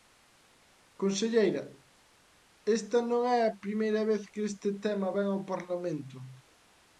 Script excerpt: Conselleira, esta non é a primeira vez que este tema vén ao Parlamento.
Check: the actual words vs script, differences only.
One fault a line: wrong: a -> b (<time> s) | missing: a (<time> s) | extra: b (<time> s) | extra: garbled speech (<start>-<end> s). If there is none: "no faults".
no faults